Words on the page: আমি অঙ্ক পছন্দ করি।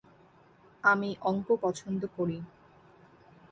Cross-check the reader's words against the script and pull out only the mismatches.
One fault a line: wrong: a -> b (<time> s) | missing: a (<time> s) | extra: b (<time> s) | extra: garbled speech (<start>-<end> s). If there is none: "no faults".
no faults